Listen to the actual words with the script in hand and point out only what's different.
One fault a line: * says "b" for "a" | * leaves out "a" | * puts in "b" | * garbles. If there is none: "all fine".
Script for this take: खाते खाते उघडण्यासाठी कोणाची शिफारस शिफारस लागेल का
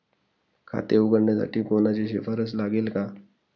* leaves out "खाते"
* leaves out "शिफारस"